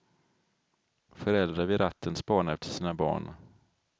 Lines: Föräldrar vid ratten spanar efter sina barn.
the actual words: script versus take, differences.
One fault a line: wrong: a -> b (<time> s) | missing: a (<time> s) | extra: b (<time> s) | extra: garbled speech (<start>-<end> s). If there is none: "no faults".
no faults